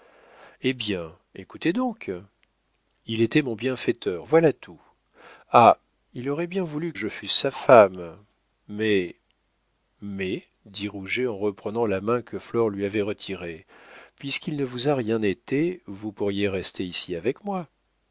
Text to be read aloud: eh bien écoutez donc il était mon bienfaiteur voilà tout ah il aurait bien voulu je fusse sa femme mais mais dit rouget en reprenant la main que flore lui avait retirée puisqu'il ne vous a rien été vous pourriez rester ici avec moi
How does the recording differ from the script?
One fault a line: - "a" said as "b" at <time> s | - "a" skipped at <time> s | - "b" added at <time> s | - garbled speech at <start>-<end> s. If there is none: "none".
none